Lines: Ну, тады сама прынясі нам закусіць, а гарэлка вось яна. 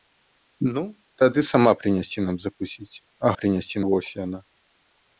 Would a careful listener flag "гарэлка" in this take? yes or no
yes